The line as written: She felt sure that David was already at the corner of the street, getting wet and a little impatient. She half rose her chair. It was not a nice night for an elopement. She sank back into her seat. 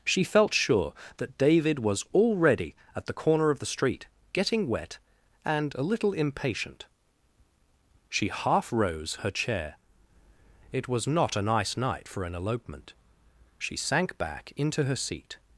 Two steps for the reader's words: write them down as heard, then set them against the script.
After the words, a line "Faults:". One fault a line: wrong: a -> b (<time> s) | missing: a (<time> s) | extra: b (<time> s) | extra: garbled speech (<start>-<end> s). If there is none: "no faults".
She felt sure that David was already at the corner of the street, getting wet and a little impatient. She half rose her chair. It was not a nice night for an elopement. She sank back into her seat.
Faults:
no faults